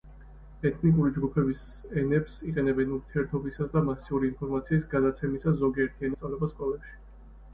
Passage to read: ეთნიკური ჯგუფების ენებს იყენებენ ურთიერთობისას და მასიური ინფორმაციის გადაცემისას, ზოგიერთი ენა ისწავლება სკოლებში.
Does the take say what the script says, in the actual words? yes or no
no